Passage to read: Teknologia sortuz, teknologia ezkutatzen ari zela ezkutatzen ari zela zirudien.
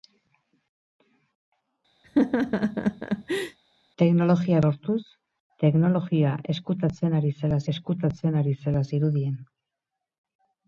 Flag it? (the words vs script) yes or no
no